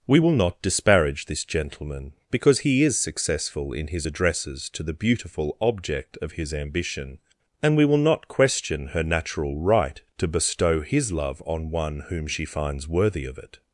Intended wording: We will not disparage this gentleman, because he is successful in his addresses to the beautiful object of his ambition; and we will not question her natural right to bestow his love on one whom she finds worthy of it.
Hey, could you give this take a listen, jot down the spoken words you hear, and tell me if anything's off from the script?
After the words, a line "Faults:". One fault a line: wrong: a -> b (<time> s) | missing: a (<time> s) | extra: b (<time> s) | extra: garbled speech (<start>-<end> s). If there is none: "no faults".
We will not disparage this gentleman, because he is successful in his addresses to the beautiful object of his ambition; and we will not question her natural right to bestow his love on one whom she finds worthy of it.
Faults:
no faults